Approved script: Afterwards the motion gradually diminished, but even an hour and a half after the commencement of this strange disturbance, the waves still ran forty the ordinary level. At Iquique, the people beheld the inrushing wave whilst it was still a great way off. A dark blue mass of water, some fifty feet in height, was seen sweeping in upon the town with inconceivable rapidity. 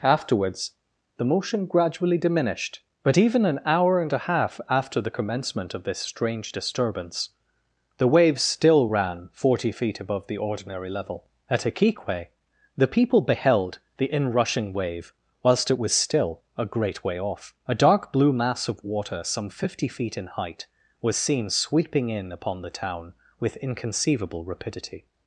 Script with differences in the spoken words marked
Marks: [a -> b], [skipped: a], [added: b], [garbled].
Afterwards the motion gradually diminished, but even an hour and a half after the commencement of this strange disturbance, the waves still ran forty [added: feet above] the ordinary level. At Iquique, the people beheld the inrushing wave whilst it was still a great way off. A dark blue mass of water, some fifty feet in height, was seen sweeping in upon the town with inconceivable rapidity.